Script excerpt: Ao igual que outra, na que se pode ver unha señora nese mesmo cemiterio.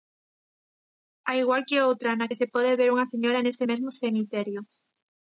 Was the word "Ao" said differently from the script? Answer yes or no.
no